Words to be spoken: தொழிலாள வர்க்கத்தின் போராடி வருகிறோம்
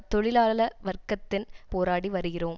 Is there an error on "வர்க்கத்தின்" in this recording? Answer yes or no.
no